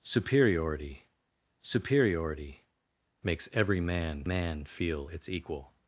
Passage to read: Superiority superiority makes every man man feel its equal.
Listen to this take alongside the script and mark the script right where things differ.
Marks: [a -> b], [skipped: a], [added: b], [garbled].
Superiority superiority makes every man man feel its equal.